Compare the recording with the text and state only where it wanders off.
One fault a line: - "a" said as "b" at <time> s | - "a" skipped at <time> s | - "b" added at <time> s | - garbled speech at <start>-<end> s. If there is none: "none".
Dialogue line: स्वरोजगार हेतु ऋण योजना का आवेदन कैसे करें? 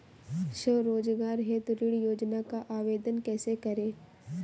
none